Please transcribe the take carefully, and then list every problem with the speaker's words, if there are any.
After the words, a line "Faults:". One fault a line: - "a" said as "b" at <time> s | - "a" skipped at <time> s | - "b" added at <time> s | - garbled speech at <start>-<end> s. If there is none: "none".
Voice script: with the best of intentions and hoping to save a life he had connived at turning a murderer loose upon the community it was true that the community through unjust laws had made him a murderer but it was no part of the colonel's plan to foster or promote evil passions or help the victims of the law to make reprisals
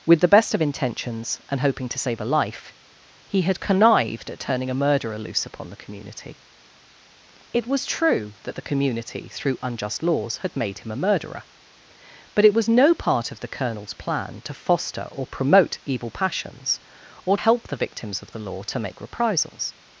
with the best of intentions and hoping to save a life he had connived at turning a murderer loose upon the community it was true that the community through unjust laws had made him a murderer but it was no part of the colonel's plan to foster or promote evil passions or help the victims of the law to make reprisals
Faults:
none